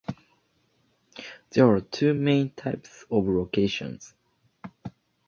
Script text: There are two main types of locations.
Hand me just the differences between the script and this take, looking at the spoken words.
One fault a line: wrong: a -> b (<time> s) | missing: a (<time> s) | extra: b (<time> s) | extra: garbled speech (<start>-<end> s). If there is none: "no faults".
no faults